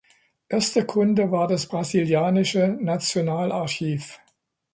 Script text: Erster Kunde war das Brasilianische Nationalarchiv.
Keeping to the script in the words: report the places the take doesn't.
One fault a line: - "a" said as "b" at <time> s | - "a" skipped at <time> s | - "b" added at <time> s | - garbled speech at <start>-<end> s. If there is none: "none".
none